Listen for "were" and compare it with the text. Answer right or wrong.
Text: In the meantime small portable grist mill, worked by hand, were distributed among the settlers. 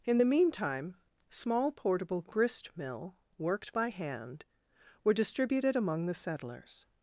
right